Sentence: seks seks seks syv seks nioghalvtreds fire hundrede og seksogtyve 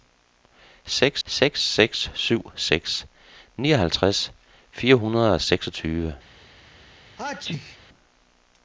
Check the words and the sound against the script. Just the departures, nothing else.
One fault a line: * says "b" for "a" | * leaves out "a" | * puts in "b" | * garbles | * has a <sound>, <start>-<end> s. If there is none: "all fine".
* has a sneeze, 7.2-7.8 s